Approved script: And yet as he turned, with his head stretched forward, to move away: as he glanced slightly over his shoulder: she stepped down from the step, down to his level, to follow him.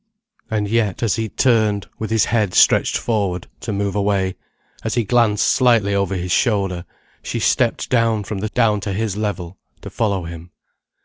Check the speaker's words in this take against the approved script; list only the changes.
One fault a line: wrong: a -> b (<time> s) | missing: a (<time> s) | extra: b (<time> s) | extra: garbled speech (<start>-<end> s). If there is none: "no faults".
missing: step (8.5 s)